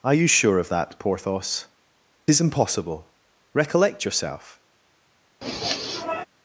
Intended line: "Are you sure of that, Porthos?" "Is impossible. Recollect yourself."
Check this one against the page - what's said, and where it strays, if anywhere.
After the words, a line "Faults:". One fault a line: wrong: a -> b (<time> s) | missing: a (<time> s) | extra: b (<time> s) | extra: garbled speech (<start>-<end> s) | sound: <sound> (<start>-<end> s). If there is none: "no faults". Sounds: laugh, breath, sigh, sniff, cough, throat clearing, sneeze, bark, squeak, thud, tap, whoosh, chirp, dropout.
"Are you sure of that, Porthos?" "Is impossible. Recollect yourself."
Faults:
sound: sniff (5.4-6.3 s)